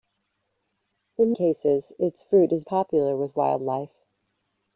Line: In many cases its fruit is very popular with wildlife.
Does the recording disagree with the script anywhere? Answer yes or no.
yes